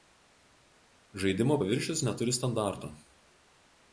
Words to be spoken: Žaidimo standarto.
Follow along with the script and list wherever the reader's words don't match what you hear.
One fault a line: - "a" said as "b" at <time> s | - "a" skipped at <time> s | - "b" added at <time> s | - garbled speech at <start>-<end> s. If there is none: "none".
- "paviršius neturi" added at 1.6 s